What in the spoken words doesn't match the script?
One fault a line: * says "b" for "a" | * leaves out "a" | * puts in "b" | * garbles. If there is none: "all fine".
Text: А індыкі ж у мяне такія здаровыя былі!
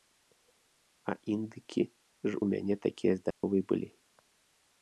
all fine